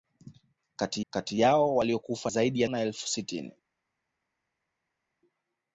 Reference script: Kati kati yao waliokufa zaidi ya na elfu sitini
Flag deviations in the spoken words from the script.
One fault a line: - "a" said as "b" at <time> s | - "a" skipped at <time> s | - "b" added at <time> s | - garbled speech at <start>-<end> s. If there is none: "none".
none